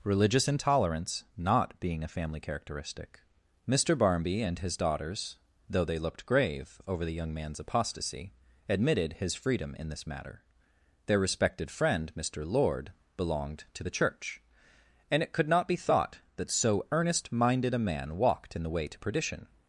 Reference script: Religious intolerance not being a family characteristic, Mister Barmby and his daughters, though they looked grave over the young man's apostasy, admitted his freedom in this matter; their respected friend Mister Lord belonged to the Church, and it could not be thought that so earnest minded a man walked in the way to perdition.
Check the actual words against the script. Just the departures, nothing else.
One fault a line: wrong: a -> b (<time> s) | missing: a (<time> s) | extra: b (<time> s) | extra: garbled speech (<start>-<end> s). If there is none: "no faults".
no faults